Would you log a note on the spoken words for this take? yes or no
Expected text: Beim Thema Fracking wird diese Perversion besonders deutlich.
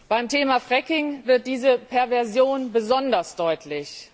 no